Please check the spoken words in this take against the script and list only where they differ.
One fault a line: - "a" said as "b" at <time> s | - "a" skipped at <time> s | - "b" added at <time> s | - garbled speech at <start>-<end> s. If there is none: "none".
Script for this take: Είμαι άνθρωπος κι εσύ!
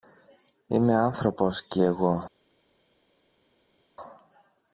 - "εσύ" said as "εγώ" at 1.8 s